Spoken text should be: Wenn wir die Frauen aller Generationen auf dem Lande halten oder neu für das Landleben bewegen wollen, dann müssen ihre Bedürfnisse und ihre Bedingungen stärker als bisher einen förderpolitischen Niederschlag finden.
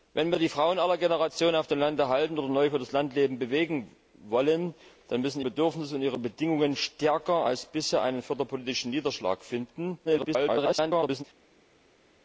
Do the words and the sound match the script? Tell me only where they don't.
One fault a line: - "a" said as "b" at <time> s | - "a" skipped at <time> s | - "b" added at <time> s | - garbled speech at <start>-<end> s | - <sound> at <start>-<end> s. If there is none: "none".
- "ihre" skipped at 5.4 s
- garbled speech at 10.0-11.2 s